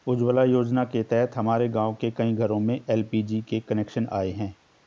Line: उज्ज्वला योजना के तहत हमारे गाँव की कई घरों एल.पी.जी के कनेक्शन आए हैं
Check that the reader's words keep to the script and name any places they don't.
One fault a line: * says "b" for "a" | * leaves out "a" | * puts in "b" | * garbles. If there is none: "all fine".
* says "के" for "की"
* puts in "में"